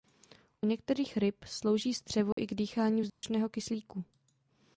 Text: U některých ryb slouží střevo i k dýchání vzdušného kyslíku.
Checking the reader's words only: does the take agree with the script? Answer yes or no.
yes